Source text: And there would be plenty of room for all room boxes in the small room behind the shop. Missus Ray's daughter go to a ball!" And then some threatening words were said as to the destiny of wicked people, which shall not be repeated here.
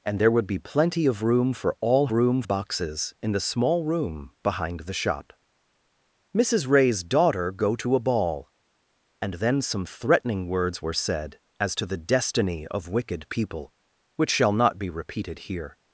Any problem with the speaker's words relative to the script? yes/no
no